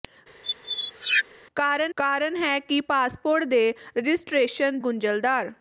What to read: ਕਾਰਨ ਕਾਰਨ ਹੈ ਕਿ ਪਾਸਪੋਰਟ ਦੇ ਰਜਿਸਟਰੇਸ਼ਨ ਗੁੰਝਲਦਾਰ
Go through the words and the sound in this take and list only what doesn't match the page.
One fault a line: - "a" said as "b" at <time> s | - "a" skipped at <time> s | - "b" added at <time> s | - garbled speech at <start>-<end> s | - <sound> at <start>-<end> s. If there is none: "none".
- squeak at 0.4-1.2 s